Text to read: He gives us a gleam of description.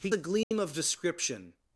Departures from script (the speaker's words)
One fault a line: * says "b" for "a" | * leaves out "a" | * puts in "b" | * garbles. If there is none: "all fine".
* leaves out "gives us"